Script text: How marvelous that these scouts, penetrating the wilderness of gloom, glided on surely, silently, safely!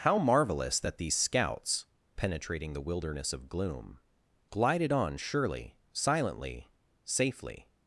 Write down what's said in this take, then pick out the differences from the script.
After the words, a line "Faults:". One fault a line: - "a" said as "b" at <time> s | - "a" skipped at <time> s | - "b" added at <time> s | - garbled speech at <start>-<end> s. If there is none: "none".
How marvelous that these scouts, penetrating the wilderness of gloom, glided on surely, silently, safely!
Faults:
none